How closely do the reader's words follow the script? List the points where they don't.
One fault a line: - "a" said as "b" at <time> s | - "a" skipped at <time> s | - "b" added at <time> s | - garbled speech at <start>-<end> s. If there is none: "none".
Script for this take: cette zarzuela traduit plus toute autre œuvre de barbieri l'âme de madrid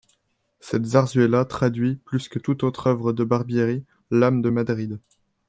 - "que" added at 2.3 s